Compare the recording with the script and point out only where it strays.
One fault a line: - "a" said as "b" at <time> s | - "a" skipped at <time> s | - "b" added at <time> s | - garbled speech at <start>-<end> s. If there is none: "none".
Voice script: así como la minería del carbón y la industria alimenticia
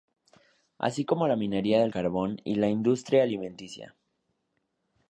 none